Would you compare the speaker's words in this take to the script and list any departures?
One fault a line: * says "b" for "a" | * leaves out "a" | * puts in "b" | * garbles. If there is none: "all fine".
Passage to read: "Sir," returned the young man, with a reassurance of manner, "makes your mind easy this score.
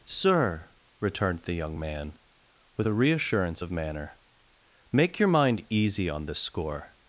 * says "make" for "makes"
* puts in "on"